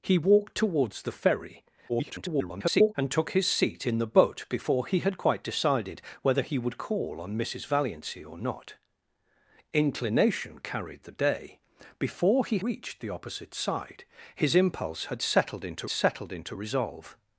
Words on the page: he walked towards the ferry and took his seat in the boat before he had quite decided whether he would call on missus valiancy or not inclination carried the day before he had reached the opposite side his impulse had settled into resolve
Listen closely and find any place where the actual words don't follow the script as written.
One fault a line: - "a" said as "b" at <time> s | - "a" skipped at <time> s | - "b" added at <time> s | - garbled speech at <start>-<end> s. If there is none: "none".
- garbled speech at 1.9-2.9 s
- "had" skipped at 12.6 s
- "settled into" added at 15.9 s